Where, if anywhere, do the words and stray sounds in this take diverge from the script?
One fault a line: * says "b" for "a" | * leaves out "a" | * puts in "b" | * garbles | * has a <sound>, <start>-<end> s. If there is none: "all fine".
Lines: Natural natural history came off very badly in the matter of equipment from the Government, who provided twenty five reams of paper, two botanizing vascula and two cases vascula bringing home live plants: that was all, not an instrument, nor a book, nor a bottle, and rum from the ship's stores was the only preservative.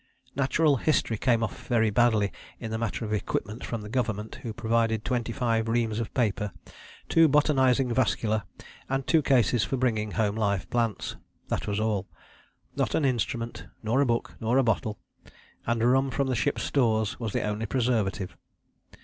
* leaves out "natural"
* says "for" for "vascula"